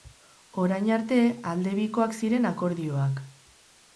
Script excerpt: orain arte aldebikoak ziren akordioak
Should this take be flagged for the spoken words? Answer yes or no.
no